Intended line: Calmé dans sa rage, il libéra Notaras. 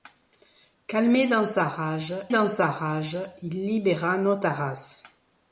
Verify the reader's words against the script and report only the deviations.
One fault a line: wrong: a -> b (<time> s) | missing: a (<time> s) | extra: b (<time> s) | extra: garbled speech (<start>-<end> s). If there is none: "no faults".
extra: dans sa rage (2.3 s)